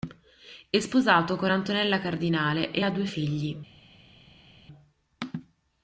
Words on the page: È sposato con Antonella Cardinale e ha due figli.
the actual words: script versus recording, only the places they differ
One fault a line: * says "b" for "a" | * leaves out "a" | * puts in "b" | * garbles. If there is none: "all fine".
all fine